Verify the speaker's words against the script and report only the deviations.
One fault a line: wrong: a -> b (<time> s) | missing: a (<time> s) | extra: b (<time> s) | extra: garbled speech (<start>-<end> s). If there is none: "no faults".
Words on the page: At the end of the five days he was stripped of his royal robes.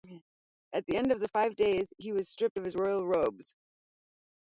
no faults